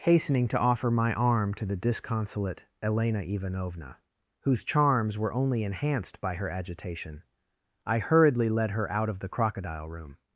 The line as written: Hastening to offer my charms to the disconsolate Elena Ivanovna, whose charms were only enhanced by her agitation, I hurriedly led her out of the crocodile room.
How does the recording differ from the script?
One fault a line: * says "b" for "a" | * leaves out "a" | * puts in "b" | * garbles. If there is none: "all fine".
* says "arm" for "charms"